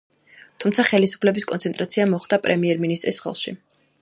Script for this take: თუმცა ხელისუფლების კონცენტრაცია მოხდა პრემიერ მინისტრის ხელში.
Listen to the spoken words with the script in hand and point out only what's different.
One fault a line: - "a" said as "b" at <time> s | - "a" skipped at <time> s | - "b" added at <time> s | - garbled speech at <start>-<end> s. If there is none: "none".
none